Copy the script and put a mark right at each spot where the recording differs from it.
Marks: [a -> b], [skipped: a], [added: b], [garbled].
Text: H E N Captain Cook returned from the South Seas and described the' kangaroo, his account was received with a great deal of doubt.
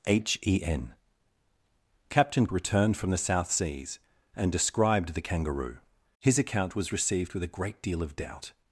H E N Captain [skipped: Cook] returned from the South Seas and described the' kangaroo, his account was received with a great deal of doubt.